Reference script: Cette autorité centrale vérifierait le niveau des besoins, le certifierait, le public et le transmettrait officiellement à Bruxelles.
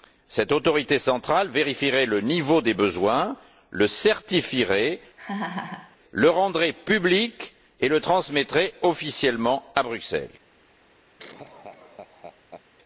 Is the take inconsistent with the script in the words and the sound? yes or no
yes